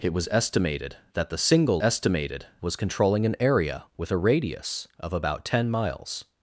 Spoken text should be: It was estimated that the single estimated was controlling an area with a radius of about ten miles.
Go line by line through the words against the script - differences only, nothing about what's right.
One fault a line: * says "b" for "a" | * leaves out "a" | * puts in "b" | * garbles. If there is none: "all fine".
all fine